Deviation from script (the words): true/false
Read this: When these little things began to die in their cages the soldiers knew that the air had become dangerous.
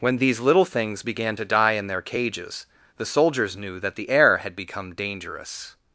false